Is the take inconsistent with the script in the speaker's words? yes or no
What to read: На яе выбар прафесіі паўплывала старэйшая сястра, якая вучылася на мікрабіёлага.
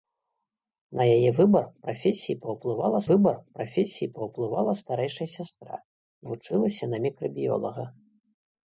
yes